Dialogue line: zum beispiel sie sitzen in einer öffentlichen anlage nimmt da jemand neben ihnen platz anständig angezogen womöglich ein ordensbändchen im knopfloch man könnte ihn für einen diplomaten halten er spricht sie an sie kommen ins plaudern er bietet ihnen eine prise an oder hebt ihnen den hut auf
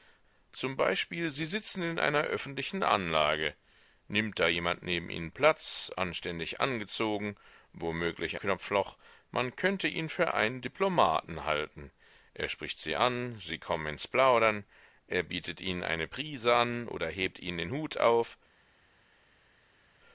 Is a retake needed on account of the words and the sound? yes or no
yes